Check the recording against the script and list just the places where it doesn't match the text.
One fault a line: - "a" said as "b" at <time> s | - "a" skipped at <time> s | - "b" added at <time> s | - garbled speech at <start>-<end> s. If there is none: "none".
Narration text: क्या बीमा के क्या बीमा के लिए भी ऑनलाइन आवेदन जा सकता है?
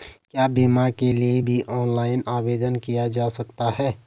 - "क्या बीमा के" skipped at 1.1 s
- "किया" added at 2.8 s